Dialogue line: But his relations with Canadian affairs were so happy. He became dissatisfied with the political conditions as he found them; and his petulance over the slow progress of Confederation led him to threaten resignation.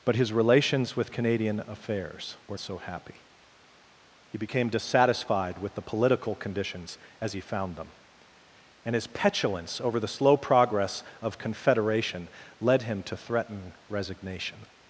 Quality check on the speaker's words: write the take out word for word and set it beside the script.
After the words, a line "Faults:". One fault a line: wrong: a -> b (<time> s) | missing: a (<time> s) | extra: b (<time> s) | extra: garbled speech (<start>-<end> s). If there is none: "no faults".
But his relations with Canadian affairs were so happy. He became dissatisfied with the political conditions as he found them; and his petulance over the slow progress of Confederation led him to threaten resignation.
Faults:
no faults